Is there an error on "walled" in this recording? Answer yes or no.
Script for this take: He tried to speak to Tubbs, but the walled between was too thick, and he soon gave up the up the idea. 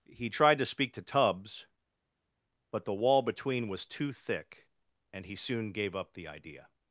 yes